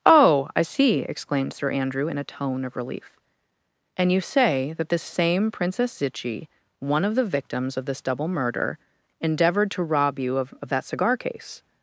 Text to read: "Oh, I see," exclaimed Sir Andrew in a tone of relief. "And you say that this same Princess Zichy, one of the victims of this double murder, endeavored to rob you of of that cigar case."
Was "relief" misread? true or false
false